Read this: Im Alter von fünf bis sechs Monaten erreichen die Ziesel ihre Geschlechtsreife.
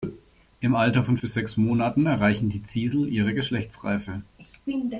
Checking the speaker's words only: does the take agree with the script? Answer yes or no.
no